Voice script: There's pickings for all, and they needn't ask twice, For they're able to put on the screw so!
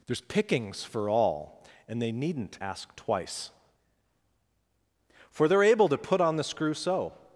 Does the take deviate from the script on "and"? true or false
false